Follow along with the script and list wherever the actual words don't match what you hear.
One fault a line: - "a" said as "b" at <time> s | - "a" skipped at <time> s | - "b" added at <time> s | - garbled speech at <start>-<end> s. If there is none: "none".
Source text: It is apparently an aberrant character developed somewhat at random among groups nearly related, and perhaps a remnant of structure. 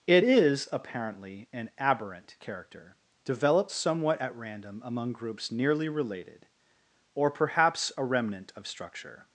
- "and" said as "or" at 7.2 s